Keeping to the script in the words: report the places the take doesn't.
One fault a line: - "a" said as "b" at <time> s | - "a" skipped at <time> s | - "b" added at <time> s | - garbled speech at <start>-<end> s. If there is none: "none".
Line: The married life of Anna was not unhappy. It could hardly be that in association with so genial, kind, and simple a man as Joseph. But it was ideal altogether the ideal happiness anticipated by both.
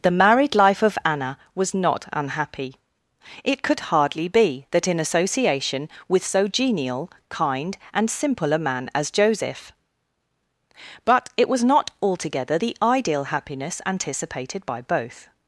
- "ideal" said as "not" at 11.6 s